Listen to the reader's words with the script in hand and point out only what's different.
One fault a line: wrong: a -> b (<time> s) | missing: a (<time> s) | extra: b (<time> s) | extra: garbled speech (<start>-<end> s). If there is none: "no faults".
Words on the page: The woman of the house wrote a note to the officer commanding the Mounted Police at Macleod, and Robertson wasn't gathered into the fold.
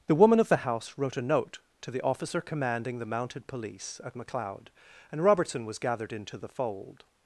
wrong: wasn't -> was (5.7 s)